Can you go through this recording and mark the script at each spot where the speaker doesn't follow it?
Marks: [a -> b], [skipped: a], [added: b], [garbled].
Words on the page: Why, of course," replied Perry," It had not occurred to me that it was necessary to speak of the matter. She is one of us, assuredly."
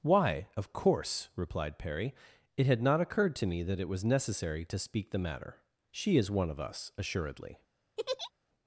Why, of course," replied Perry," It had not occurred to me that it was necessary to speak [skipped: of] the matter. She is one of us, assuredly."